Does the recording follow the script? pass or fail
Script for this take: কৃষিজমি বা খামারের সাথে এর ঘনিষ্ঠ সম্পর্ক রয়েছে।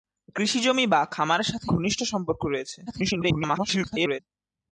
fail